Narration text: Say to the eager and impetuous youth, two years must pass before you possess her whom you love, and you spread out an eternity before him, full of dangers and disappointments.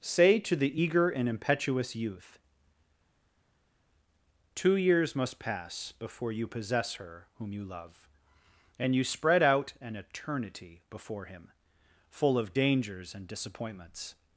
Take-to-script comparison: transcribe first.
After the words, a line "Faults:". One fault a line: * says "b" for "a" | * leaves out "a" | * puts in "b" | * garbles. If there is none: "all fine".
Say to the eager and impetuous youth, two years must pass before you possess her whom you love, and you spread out an eternity before him, full of dangers and disappointments.
Faults:
all fine